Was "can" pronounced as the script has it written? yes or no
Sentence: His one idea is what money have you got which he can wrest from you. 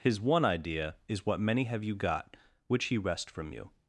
no